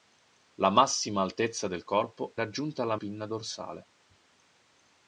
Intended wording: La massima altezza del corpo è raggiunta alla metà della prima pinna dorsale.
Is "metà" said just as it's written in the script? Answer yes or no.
no